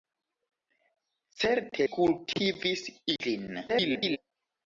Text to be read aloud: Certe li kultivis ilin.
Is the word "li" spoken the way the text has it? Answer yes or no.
no